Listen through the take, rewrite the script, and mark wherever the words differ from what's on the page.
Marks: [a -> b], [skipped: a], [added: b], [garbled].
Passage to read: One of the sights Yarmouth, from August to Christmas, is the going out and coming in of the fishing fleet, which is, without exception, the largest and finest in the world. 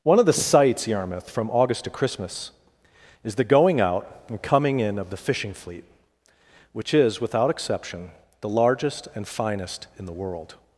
One of the sights Yarmouth, from August to Christmas, is the going out and coming in of the fishing fleet, which is, without exception, the largest and finest in the world.